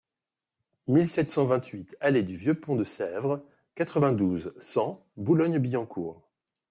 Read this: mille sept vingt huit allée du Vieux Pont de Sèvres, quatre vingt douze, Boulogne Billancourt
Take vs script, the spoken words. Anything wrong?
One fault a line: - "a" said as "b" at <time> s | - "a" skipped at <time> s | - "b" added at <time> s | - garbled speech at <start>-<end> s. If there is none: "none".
- "cent" added at 1.3 s
- "cent" added at 4.6 s